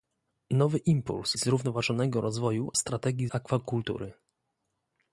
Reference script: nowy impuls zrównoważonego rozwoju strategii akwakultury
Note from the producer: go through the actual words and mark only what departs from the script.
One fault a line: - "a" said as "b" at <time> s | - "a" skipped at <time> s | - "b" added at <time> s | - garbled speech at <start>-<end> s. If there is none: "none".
none